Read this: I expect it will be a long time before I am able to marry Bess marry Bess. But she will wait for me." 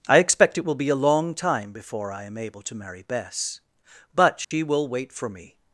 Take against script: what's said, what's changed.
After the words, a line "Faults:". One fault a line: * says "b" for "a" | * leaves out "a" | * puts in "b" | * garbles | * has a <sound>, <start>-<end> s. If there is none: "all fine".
I expect it will be a long time before I am able to marry Bess. But she will wait for me."
Faults:
* leaves out "marry Bess"
* has a dropout, 4.4-4.5 s